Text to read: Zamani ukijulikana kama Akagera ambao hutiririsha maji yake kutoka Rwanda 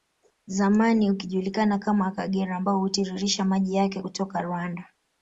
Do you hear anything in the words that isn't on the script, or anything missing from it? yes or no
no